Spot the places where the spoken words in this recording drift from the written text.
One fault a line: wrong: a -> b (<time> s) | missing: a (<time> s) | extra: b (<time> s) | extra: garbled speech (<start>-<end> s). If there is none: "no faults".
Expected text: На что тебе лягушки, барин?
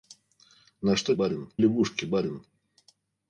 wrong: тебе -> барин (1.1 s)